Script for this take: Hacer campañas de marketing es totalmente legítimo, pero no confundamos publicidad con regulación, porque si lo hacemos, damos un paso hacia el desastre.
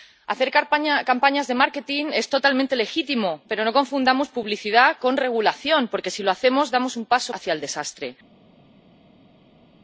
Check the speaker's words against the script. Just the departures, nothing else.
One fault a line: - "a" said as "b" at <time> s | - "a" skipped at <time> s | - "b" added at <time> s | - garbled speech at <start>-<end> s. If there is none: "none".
none